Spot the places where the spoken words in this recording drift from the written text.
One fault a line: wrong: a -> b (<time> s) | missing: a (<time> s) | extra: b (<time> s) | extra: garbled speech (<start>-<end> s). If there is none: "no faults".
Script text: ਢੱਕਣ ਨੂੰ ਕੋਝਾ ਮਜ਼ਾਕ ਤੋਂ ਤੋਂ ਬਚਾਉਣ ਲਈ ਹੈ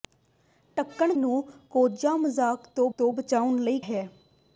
no faults